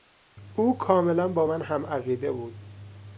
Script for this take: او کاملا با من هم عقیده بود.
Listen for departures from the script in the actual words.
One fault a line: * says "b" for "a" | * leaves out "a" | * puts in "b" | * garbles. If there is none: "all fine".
all fine